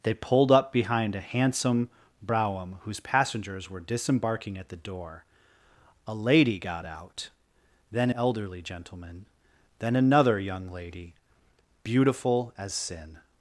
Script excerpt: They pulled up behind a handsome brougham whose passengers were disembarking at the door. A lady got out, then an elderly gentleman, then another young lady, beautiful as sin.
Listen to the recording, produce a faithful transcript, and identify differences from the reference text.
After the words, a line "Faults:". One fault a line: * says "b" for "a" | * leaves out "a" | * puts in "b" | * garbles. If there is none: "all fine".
They pulled up behind a handsome brougham whose passengers were disembarking at the door. A lady got out, then elderly gentleman, then another young lady, beautiful as sin.
Faults:
* leaves out "an"